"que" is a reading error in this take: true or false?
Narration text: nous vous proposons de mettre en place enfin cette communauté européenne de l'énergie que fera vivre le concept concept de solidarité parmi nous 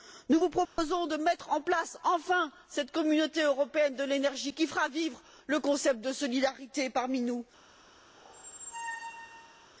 true